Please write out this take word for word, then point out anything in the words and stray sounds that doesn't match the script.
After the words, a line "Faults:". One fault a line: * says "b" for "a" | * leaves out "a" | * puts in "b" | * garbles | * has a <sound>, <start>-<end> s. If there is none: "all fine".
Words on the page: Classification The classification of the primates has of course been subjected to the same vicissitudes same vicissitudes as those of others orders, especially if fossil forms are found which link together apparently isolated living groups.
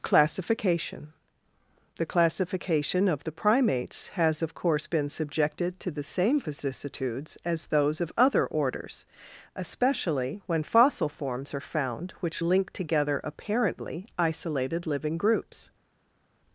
Classification The classification of the primates has of course been subjected to the same vicissitudes as those of other orders, especially when fossil forms are found which link together apparently isolated living groups.
Faults:
* leaves out "same vicissitudes"
* says "other" for "others"
* says "when" for "if"